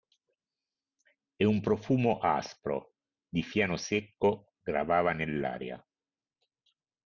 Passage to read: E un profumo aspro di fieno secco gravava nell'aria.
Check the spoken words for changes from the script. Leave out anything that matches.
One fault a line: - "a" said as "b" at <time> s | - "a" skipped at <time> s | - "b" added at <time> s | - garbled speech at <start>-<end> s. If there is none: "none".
none